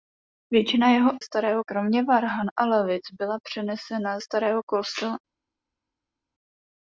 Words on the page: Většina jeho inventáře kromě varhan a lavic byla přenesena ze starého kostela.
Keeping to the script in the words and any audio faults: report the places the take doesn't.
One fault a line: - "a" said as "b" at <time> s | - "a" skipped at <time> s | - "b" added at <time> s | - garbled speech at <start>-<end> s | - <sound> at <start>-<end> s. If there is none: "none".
- "inventáře" said as "starého" at 1.2 s
- "ze" skipped at 4.2 s